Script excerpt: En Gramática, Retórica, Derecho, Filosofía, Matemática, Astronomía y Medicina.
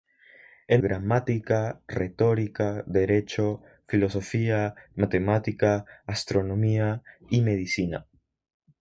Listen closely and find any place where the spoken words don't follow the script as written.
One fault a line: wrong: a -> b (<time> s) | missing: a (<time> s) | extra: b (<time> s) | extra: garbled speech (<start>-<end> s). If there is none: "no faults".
no faults